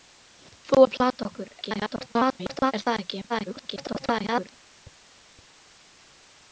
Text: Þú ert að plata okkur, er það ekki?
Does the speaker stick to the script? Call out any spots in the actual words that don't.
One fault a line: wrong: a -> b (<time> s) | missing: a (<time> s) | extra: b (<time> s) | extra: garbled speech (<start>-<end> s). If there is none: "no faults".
missing: ert (0.8 s)
extra: garbled speech (1.6-2.7 s)
extra: garbled speech (3.3-4.6 s)